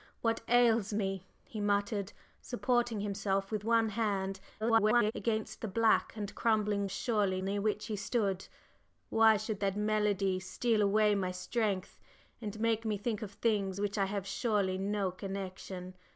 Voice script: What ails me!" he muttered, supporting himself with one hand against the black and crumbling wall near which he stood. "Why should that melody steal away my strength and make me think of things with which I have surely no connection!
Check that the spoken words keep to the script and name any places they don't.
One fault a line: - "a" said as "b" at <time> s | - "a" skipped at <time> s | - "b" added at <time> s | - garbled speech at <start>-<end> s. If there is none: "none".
- garbled speech at 4.6-5.1 s
- "wall" said as "surely" at 6.9 s